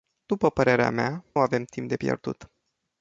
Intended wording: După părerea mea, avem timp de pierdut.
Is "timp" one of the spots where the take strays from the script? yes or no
no